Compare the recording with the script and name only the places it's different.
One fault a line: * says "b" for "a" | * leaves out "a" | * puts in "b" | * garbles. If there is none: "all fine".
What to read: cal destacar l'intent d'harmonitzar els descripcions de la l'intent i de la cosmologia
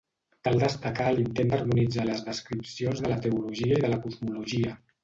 * says "les" for "els"
* says "teologia" for "l'intent"